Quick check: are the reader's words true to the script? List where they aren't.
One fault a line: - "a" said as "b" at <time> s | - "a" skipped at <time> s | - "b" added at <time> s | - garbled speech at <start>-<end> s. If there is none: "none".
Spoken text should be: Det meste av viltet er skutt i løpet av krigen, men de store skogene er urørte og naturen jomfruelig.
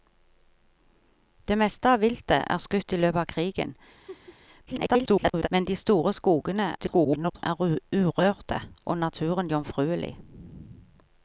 - garbled speech at 4.7-5.5 s
- garbled speech at 6.8-7.4 s